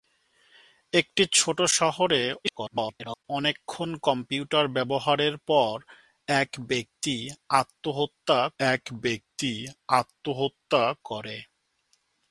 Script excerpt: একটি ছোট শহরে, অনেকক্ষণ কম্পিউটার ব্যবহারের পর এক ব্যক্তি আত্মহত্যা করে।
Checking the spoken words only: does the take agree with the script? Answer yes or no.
no